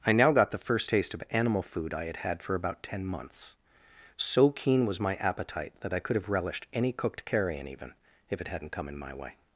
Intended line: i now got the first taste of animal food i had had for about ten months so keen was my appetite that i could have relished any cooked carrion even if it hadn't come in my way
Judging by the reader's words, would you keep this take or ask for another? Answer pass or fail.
pass